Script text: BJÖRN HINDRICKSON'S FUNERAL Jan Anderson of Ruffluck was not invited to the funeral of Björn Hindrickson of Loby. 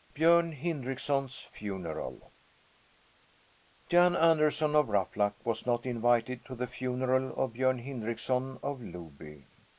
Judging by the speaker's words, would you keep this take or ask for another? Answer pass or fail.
pass